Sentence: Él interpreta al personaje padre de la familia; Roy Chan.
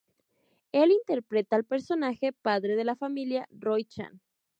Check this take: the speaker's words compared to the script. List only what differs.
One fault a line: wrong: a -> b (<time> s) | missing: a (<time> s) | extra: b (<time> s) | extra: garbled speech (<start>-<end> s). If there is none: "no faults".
no faults